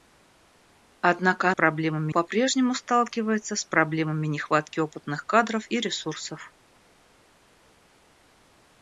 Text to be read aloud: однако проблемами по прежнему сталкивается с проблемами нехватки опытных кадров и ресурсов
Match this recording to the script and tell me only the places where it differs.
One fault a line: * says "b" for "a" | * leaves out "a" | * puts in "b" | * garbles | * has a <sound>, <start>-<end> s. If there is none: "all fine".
all fine